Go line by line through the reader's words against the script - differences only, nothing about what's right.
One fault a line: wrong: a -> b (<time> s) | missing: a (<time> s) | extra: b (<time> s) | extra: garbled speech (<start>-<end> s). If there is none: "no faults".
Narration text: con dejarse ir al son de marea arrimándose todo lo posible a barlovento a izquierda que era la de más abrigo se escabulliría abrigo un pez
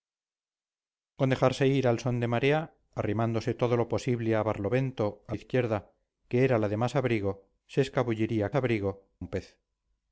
no faults